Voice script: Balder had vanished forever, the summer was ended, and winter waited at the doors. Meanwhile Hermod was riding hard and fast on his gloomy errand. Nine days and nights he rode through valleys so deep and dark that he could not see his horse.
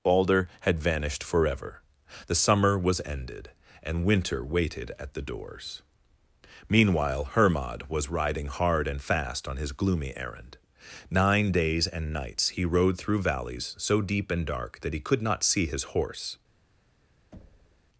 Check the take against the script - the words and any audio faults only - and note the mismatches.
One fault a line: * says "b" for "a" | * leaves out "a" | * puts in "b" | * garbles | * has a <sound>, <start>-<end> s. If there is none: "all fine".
* has a thud, 17.3-17.8 s